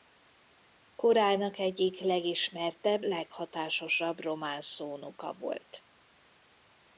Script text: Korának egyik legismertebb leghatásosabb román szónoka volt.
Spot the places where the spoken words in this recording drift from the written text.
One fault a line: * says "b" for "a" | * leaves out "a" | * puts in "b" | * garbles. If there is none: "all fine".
all fine